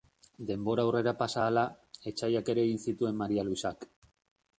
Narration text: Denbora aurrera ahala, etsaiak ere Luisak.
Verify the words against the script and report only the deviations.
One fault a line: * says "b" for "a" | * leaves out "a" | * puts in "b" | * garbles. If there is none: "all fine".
* puts in "pasa"
* puts in "egin zituen Maria"